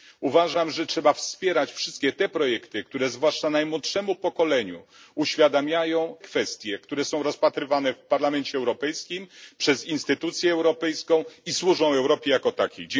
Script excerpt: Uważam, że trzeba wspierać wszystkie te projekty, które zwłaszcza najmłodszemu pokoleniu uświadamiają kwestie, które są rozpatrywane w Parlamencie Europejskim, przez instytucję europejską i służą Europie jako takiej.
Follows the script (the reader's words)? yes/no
yes